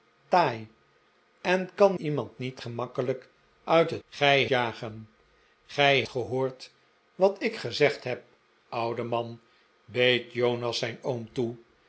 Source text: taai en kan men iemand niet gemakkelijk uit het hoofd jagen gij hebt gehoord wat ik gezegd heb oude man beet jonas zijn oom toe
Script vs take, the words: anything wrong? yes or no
yes